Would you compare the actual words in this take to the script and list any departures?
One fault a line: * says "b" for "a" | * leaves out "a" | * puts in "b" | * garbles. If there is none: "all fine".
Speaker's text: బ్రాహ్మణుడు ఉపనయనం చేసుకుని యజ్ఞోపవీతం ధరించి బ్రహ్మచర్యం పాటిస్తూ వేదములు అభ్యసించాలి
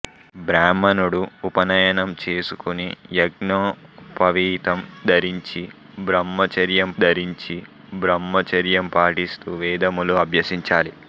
* puts in "ధరించి బ్రహ్మచర్యం"